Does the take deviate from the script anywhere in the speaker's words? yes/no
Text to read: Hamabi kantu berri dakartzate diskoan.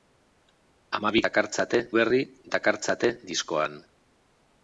yes